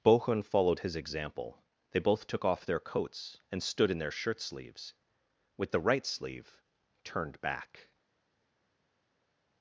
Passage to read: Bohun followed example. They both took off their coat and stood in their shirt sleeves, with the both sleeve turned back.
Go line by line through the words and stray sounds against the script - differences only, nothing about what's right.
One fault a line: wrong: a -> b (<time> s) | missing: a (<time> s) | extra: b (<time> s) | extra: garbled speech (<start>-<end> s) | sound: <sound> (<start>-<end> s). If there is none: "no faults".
extra: his (0.8 s)
wrong: coat -> coats (2.8 s)
wrong: both -> right (5.8 s)